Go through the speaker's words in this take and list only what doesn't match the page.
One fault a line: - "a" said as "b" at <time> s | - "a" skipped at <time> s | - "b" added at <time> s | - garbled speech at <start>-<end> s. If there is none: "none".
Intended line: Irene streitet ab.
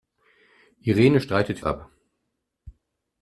none